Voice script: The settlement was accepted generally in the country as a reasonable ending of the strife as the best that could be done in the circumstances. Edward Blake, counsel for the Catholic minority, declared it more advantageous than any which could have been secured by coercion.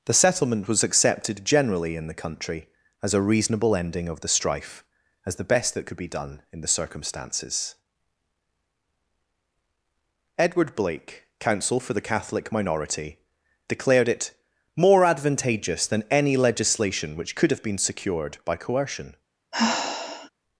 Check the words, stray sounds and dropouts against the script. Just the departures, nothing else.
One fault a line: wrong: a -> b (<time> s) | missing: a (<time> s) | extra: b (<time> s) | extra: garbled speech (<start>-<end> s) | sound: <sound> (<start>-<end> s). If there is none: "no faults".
extra: legislation (16.4 s)
sound: sigh (19.5-20.3 s)